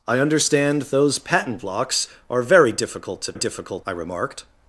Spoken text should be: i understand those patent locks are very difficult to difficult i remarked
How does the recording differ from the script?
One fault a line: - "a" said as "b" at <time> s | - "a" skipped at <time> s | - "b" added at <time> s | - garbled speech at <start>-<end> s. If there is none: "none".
none